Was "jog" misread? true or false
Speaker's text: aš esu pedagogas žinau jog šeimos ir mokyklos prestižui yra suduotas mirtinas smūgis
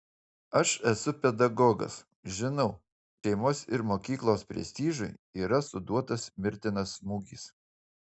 true